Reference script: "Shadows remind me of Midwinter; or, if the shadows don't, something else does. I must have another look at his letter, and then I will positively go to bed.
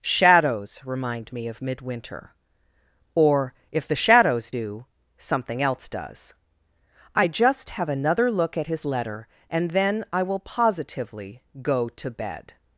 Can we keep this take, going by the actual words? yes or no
no